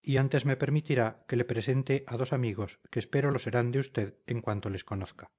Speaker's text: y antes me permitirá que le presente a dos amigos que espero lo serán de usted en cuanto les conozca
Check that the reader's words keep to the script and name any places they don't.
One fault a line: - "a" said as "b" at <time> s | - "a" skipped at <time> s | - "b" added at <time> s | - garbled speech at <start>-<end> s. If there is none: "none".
none